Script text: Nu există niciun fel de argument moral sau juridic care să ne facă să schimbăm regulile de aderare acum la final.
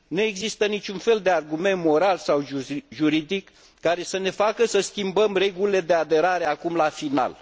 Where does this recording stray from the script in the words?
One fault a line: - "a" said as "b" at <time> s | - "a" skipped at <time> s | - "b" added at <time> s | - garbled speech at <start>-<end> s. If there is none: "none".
none